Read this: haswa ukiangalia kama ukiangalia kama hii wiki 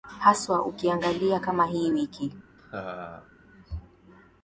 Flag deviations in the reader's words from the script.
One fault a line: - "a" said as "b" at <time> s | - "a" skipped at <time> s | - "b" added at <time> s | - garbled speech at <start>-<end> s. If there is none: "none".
- "ukiangalia kama" skipped at 1.6 s